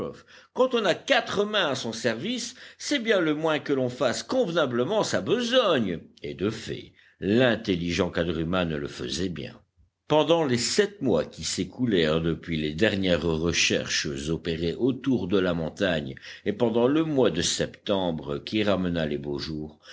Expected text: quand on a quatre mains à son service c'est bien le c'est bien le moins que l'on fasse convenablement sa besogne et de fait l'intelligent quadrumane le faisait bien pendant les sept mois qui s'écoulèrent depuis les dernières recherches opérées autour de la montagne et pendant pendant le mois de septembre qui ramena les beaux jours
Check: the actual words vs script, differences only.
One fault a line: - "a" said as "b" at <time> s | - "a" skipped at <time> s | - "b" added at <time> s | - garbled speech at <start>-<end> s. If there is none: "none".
- "c'est bien le" skipped at 3.4 s
- "pendant" skipped at 16.9 s